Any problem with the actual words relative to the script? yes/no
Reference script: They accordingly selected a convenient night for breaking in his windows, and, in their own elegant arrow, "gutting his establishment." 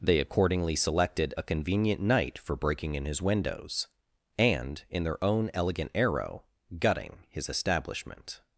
no